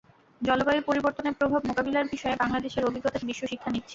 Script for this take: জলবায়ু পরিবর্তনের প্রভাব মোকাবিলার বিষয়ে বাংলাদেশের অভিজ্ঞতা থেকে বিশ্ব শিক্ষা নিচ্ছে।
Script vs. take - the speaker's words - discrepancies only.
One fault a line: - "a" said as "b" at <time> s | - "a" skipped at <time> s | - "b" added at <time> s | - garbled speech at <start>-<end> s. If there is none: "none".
- "থেকে" skipped at 3.2 s